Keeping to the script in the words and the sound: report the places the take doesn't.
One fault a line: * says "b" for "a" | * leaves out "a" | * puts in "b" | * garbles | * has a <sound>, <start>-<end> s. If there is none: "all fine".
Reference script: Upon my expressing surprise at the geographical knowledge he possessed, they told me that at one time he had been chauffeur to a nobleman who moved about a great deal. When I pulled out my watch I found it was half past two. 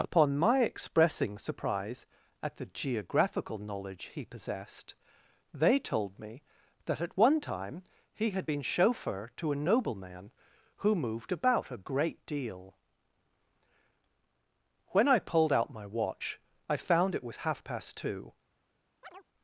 * has a chirp, 19.0-19.2 s